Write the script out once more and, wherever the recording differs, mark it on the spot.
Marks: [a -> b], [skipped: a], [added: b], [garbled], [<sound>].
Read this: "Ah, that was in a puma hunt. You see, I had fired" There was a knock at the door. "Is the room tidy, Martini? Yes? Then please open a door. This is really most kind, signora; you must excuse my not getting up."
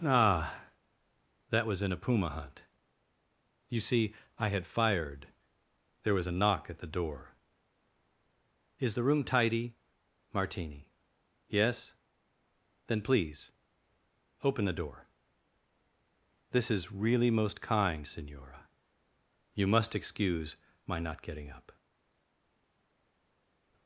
"Ah, that was in a puma hunt. You see, I had fired" There was a knock at the door. "Is the room tidy, Martini? Yes? Then please open [a -> the] door. This is really most kind, signora; you must excuse my not getting up."